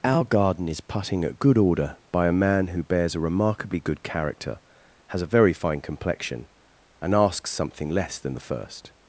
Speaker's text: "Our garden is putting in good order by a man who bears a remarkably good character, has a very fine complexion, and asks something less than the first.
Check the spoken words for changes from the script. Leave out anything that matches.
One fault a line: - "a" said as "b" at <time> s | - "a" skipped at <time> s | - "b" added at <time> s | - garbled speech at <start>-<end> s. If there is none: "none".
- "in" said as "at" at 1.2 s